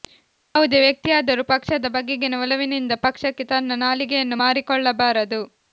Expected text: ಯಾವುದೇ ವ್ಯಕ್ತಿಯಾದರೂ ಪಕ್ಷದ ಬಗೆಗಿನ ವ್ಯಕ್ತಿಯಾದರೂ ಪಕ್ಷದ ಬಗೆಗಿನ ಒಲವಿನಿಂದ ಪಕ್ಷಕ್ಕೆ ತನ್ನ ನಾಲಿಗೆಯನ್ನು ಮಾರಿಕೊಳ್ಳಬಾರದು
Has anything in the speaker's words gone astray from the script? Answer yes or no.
yes